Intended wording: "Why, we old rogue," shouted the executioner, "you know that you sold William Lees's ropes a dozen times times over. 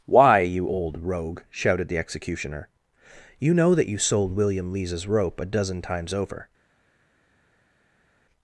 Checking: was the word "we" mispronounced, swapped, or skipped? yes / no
yes